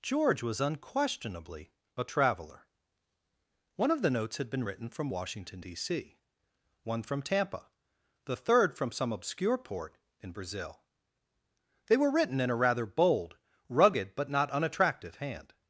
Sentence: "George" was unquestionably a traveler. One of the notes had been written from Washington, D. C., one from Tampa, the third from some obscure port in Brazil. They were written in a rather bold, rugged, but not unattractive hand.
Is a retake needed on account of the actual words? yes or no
no